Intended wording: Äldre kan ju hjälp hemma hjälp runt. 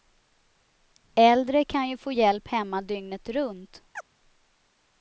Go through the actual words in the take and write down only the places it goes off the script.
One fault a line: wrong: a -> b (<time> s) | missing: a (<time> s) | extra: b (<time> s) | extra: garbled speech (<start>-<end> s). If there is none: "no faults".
extra: få (2.0 s)
wrong: hjälp -> dygnet (2.8 s)